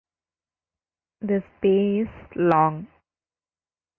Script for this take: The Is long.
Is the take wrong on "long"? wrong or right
right